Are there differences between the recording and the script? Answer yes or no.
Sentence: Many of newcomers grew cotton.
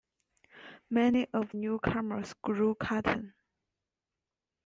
no